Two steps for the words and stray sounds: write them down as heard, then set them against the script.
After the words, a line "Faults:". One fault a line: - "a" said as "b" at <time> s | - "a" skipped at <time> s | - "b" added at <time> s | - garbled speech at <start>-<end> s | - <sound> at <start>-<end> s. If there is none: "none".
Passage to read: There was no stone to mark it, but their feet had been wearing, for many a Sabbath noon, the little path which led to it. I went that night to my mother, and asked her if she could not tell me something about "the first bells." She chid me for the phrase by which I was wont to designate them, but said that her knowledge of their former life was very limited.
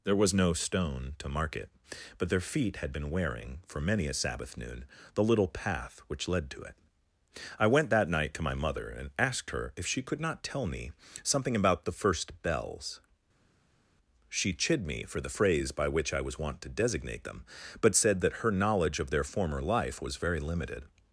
There was no stone to mark it, but their feet had been wearing, for many a Sabbath noon, the little path which led to it. I went that night to my mother, and asked her if she could not tell me something about "the first bells." She chid me for the phrase by which I was wont to designate them, but said that her knowledge of their former life was very limited.
Faults:
none